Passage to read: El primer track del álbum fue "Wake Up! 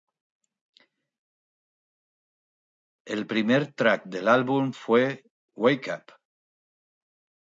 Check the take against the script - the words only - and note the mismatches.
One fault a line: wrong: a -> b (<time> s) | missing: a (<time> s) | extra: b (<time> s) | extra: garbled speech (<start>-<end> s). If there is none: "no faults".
no faults